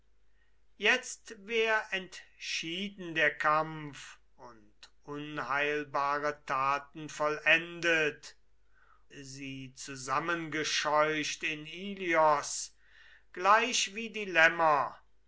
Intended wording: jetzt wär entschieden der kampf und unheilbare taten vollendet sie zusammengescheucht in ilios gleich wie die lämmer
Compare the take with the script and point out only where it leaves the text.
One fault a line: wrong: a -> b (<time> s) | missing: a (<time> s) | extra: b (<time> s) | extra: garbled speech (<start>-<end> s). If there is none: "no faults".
no faults